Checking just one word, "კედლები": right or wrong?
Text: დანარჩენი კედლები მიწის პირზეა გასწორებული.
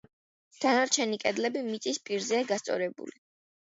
right